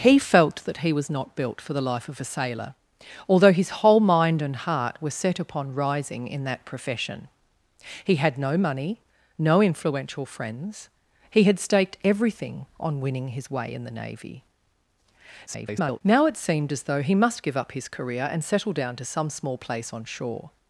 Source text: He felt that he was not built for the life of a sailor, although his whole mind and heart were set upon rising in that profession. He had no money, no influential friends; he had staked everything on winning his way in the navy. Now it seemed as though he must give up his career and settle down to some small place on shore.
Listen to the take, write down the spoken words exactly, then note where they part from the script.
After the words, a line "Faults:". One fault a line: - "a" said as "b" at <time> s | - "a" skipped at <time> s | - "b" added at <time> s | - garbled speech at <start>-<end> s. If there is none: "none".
He felt that he was not built for the life of a sailor, although his whole mind and heart were set upon rising in that profession. He had no money, no influential friends; he had staked everything on winning his way in the navy. [garbled] Now it seemed as though he must give up his career and settle down to some small place on shore.
Faults:
- garbled speech at 15.5-16.0 s